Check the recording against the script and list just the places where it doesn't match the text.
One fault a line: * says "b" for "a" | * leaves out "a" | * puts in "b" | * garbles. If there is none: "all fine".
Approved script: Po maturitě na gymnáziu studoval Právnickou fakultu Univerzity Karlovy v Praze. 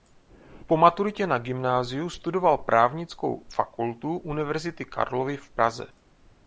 all fine